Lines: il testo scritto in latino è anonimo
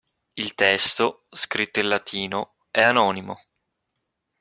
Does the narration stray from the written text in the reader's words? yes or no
no